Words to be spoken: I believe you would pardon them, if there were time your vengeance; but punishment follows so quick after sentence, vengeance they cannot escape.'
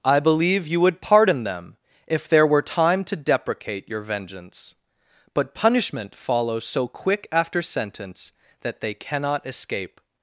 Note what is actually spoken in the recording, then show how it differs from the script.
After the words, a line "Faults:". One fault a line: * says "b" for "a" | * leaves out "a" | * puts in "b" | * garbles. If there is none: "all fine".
I believe you would pardon them, if there were time to deprecate your vengeance; but punishment follows so quick after sentence, that they cannot escape.'
Faults:
* puts in "to deprecate"
* says "that" for "vengeance"